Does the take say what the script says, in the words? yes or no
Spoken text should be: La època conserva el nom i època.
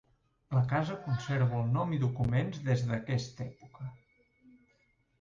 no